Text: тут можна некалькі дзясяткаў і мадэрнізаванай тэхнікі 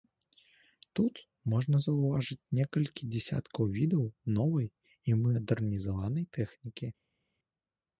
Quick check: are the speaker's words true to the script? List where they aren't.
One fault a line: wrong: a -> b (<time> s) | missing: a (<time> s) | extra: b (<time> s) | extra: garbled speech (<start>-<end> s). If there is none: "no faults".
extra: заўважыць (1.9 s)
extra: відаў новай (3.8 s)